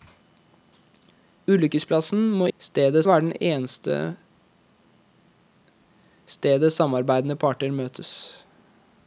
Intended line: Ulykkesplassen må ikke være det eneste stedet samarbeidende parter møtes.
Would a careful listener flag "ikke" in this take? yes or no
yes